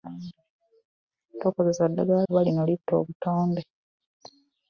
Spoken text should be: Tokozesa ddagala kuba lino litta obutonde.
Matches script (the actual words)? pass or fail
pass